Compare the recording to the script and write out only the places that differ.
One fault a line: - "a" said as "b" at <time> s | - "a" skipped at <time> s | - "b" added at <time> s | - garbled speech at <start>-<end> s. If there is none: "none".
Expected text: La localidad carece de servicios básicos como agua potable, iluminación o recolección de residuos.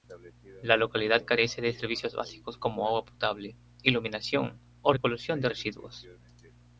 none